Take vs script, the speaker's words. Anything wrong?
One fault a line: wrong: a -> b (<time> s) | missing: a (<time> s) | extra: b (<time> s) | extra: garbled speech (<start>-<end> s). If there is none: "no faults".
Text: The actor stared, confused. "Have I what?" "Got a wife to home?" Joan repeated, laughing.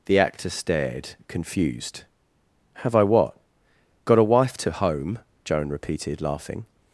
no faults